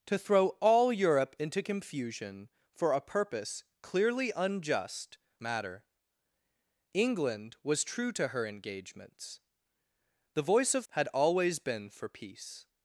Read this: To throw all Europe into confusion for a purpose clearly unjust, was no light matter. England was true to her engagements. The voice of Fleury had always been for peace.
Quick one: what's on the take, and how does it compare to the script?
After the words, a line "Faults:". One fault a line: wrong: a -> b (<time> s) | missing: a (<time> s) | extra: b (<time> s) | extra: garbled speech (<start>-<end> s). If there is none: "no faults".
To throw all Europe into confusion for a purpose clearly unjust, matter. England was true to her engagements. The voice of Had always been for peace.
Faults:
missing: was no light (5.2 s)
missing: Fleury (10.9 s)